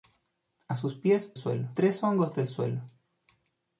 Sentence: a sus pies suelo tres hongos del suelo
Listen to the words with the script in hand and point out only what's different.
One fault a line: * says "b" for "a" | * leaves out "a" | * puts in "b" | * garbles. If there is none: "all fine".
all fine